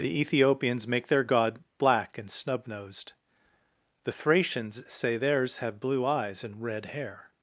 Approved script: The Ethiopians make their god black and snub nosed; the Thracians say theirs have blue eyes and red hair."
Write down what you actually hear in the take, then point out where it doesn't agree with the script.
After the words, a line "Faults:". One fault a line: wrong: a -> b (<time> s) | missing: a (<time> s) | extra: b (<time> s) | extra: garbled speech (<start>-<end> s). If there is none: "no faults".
The Ethiopians make their god black and snub nosed; the Thracians say theirs have blue eyes and red hair."
Faults:
no faults